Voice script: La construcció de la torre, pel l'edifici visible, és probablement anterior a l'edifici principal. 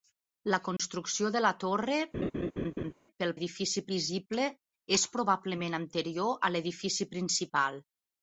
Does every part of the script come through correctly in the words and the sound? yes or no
no